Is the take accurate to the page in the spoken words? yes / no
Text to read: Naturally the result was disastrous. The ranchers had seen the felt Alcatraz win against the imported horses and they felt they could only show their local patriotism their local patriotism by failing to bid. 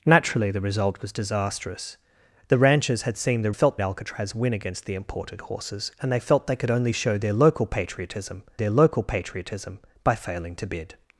yes